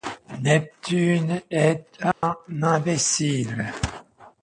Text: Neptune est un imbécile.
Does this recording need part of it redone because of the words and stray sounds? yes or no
yes